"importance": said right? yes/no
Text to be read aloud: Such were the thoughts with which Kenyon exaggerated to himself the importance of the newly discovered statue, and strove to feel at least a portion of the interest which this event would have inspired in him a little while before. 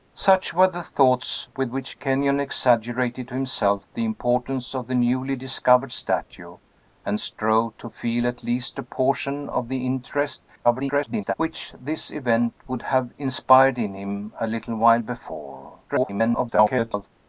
yes